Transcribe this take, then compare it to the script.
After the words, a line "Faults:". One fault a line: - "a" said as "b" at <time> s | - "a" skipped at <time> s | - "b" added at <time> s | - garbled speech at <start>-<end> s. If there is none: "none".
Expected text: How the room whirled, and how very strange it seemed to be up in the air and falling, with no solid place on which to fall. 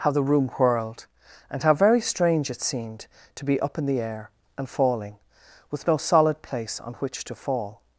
How the room whirled, and how very strange it seemed to be up in the air and falling, with no solid place on which to fall.
Faults:
none